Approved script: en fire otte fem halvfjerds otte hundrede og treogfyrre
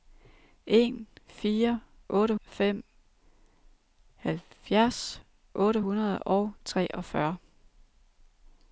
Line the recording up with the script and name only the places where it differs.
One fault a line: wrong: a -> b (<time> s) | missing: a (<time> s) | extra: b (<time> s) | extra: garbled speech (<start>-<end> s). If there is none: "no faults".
no faults